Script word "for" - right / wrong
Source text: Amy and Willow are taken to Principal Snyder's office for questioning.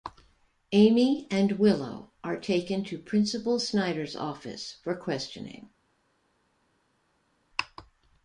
right